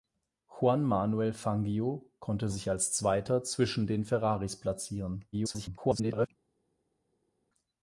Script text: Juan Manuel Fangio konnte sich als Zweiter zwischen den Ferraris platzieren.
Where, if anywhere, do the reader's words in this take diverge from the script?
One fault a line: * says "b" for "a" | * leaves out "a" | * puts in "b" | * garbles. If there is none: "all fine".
* garbles